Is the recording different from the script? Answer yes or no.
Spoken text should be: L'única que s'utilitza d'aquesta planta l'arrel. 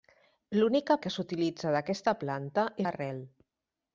no